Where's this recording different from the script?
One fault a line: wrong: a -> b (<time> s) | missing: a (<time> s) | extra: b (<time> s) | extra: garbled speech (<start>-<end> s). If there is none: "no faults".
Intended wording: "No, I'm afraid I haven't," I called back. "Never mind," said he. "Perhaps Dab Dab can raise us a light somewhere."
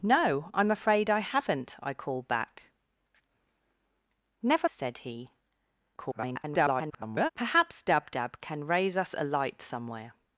missing: mind (4.7 s)
extra: garbled speech (6.0-7.3 s)